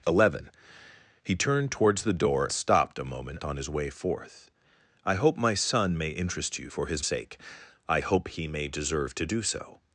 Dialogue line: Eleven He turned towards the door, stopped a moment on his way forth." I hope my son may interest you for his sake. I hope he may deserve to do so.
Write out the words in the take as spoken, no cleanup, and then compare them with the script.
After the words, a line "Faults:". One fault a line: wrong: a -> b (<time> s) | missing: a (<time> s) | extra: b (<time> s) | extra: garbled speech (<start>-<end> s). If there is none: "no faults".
Eleven He turned towards the door, stopped a moment on his way forth." I hope my son may interest you for his sake. I hope he may deserve to do so.
Faults:
no faults